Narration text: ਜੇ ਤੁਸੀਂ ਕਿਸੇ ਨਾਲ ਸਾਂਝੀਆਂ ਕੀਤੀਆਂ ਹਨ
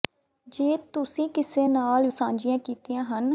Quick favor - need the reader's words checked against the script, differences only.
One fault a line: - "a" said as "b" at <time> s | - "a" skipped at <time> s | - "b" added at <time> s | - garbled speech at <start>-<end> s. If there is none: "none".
none